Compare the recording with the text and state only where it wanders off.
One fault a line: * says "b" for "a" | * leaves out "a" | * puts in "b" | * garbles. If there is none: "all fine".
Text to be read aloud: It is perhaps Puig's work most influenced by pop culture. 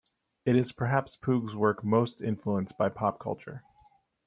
all fine